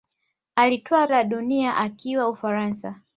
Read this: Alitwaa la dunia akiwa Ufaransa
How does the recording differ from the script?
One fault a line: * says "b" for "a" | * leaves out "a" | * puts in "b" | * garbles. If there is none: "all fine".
all fine